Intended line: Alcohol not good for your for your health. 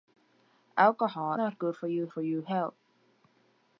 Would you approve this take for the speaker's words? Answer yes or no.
yes